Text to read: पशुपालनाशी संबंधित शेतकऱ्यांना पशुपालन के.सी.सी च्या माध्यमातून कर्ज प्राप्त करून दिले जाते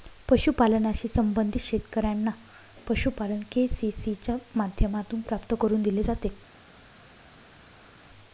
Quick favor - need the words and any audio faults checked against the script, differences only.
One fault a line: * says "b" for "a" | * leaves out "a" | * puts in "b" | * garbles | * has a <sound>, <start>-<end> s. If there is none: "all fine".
* leaves out "कर्ज"